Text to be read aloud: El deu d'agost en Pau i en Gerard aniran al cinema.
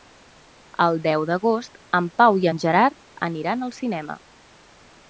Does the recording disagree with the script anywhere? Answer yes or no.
no